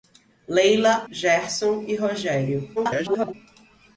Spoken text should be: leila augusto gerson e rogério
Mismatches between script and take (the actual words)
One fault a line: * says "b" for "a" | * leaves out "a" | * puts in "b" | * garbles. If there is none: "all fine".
* leaves out "augusto"
* garbles